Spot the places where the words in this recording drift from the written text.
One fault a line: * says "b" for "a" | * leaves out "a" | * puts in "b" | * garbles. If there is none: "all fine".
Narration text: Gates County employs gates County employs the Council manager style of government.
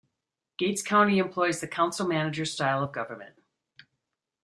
* leaves out "gates County employs"